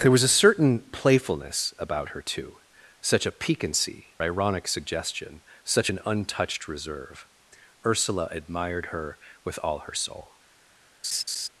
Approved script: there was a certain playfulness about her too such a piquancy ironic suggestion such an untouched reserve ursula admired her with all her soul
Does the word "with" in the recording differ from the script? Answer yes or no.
no